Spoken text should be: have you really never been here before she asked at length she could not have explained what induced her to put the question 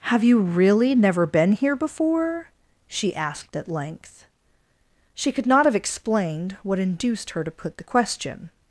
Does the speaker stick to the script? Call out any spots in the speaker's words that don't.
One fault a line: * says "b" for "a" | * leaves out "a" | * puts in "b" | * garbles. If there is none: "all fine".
all fine